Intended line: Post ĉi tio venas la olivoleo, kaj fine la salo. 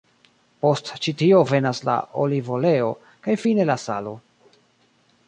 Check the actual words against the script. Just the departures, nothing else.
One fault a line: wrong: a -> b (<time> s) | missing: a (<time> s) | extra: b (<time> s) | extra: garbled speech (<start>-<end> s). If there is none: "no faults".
no faults